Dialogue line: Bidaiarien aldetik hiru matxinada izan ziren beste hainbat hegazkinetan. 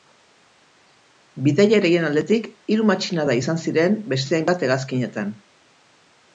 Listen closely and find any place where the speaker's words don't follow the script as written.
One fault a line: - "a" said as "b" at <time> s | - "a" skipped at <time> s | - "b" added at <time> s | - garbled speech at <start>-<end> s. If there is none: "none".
none